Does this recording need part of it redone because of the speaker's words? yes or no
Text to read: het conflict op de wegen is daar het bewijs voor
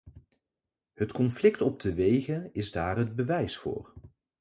no